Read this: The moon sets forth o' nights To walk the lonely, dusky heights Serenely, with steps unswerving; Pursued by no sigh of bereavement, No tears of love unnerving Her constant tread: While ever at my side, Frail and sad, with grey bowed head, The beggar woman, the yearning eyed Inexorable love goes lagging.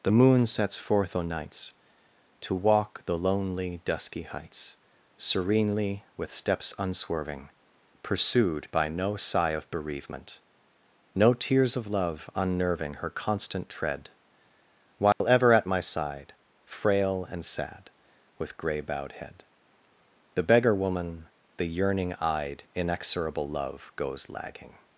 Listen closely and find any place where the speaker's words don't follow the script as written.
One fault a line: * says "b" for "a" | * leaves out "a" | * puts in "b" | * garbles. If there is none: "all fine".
all fine